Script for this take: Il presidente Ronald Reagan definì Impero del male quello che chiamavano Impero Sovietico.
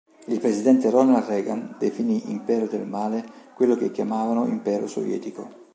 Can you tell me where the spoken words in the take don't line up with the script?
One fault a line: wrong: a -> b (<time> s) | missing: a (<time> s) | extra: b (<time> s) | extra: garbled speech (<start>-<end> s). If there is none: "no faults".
no faults